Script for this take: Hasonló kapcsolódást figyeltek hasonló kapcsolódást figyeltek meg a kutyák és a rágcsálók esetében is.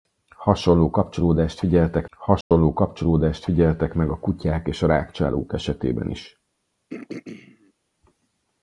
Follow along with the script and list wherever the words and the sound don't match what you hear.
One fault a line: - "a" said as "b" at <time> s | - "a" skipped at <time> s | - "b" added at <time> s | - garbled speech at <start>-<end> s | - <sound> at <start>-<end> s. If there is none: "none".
- dropout at 2.4-2.5 s
- throat clearing at 6.9-7.7 s